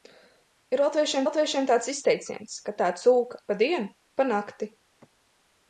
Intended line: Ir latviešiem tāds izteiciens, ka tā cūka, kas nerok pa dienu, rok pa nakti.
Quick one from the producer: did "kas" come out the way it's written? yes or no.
no